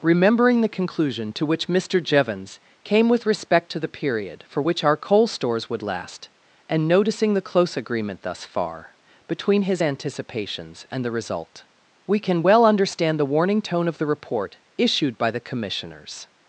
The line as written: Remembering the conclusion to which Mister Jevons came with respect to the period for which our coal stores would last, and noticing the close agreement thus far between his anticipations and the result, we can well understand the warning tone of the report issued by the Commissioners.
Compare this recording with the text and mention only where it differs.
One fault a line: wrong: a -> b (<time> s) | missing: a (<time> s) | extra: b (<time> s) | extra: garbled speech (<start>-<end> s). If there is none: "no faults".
no faults